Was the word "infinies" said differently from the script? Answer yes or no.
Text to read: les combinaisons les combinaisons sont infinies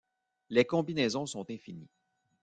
no